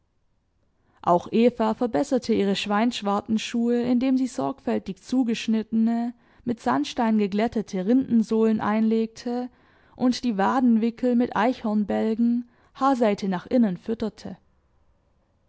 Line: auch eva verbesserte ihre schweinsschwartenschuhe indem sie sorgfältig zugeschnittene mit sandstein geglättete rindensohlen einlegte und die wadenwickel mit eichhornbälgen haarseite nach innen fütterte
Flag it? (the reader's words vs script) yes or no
no